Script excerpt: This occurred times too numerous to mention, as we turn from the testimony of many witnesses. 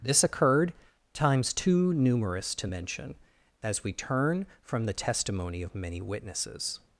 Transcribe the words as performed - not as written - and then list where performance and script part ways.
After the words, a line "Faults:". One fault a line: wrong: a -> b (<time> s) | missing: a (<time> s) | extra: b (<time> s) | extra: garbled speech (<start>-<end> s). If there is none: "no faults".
This occurred times too numerous to mention, as we turn from the testimony of many witnesses.
Faults:
no faults